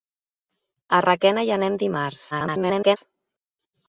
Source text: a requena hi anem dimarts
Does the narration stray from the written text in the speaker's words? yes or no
yes